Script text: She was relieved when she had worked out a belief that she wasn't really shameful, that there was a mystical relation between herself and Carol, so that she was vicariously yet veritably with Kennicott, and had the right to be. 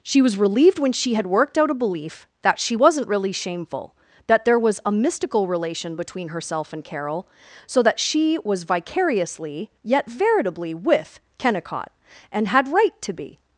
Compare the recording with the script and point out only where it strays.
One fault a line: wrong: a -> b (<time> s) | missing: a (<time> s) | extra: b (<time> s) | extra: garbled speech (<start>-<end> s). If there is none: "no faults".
missing: the (12.7 s)